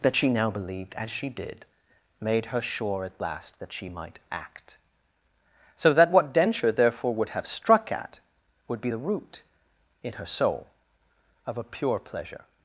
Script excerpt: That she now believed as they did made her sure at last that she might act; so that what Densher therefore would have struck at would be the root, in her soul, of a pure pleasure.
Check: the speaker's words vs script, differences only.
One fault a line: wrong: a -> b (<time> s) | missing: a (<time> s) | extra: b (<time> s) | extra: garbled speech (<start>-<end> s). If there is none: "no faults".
wrong: they -> she (1.1 s)